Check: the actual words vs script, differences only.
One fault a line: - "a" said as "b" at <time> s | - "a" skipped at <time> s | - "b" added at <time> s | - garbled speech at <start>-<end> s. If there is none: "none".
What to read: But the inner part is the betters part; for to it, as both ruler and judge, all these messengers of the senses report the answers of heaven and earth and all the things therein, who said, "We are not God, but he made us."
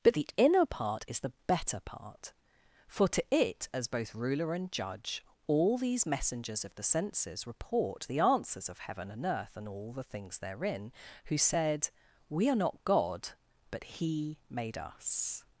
- "betters" said as "better" at 1.5 s